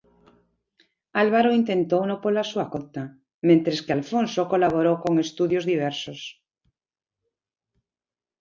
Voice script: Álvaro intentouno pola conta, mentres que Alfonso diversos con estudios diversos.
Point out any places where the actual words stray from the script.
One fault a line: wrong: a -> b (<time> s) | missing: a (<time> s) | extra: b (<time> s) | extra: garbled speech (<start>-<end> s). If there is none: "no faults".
extra: súa (2.5 s)
wrong: diversos -> colaborou (4.5 s)